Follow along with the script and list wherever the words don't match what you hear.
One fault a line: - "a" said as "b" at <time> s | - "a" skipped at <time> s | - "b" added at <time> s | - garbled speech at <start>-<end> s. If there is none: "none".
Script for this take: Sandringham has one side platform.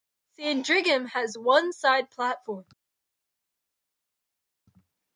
none